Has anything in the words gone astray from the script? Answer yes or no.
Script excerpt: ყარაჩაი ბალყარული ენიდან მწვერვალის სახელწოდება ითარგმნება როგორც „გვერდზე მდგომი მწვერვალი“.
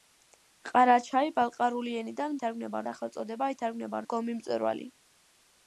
yes